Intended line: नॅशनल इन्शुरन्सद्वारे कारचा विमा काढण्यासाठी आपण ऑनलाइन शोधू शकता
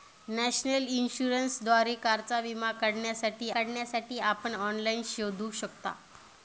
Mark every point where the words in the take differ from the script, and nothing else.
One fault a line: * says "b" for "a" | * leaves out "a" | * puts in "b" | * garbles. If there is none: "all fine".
* puts in "काढण्यासाठी"